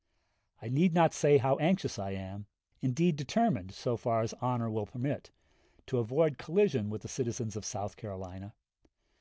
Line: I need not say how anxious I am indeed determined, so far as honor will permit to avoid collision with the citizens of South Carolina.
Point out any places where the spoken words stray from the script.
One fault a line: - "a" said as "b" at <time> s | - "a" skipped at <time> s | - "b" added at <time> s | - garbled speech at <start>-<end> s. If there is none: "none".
none